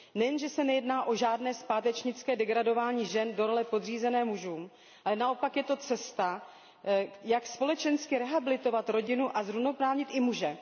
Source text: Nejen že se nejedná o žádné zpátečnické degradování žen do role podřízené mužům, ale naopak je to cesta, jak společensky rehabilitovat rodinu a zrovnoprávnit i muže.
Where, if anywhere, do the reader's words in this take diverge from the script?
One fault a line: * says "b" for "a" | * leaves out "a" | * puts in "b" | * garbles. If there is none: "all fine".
all fine